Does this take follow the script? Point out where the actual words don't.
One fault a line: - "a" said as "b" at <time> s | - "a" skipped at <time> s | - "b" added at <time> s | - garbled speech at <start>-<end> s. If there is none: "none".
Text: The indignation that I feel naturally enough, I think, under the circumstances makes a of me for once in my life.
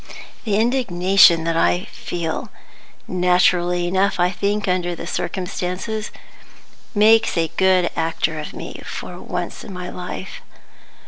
- "good actor" added at 7.5 s